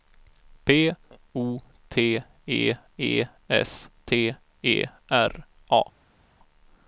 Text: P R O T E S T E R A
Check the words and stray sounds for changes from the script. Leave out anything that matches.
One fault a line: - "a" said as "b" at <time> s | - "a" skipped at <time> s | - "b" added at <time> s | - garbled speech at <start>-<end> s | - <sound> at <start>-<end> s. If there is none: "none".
- "R" skipped at 0.9 s
- "E" added at 3.0 s